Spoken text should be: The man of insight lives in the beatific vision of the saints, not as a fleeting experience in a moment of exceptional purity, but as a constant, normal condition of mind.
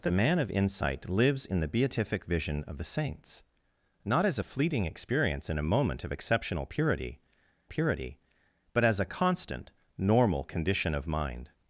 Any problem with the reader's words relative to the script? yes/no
yes